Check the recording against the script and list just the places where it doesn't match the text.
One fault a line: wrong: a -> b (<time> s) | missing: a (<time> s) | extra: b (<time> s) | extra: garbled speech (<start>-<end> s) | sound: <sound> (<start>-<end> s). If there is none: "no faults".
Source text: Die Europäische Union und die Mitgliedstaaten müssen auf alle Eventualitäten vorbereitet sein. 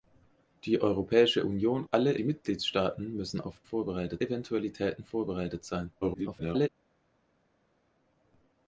wrong: und -> alle (1.9 s)
wrong: alle -> vorbereitet (3.6 s)
extra: garbled speech (6.0-6.7 s)